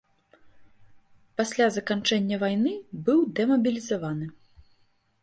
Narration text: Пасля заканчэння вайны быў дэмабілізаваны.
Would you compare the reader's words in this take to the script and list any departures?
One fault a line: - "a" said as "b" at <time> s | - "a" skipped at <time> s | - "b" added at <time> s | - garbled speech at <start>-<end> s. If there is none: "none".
none